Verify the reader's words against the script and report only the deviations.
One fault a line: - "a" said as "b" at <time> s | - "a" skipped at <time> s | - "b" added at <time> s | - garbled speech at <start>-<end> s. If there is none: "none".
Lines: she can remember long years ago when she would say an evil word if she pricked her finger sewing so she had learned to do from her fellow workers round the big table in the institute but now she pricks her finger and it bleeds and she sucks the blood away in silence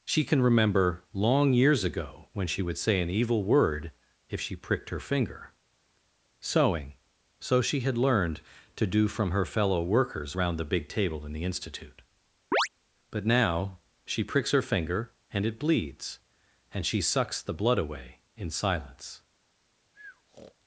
none